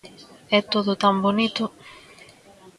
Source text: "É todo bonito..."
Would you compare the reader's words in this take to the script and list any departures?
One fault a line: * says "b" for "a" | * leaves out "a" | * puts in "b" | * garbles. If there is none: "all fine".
* puts in "tan"